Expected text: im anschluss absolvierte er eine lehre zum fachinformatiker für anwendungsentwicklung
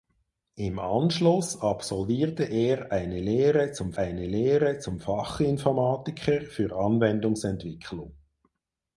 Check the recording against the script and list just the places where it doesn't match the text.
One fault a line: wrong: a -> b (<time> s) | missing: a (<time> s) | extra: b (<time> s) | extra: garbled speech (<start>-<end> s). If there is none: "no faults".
extra: eine lehre zum (4.0 s)